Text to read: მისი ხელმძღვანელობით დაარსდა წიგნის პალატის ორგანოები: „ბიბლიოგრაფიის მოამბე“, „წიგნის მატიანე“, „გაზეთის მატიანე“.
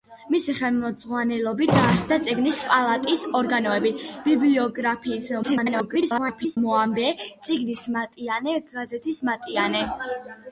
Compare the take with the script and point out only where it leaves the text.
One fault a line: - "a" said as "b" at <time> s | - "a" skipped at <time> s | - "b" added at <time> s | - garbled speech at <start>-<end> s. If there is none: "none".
- garbled speech at 5.4-6.6 s